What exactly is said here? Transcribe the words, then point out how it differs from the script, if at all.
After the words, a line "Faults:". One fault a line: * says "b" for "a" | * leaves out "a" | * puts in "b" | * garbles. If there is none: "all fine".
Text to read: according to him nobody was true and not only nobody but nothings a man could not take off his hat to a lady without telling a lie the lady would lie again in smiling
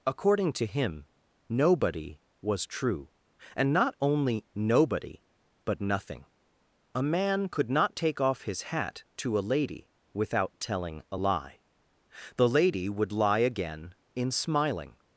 according to him nobody was true and not only nobody but nothing a man could not take off his hat to a lady without telling a lie the lady would lie again in smiling
Faults:
* says "nothing" for "nothings"